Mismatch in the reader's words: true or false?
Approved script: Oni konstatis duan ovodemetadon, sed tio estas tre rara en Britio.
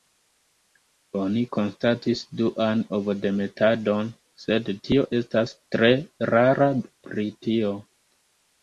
true